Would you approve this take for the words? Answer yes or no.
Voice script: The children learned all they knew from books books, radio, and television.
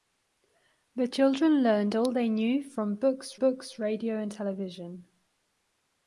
yes